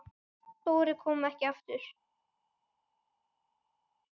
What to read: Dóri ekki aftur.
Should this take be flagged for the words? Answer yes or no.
yes